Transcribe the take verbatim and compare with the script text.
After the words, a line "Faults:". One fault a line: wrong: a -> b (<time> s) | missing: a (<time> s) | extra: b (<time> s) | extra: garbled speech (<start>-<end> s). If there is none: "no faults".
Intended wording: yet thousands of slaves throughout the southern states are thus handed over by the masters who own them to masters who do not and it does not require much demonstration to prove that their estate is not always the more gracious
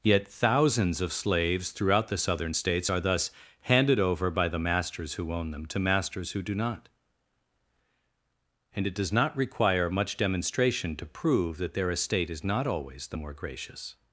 yet thousands of slaves throughout the southern states are thus handed over by the masters who own them to masters who do not and it does not require much demonstration to prove that their estate is not always the more gracious
Faults:
no faults